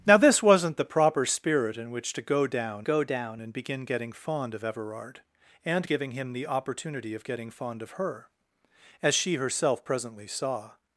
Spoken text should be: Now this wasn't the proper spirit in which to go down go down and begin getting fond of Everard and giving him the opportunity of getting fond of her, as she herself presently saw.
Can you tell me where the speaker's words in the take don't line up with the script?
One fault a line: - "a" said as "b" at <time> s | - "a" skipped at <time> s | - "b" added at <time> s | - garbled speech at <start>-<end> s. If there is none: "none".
none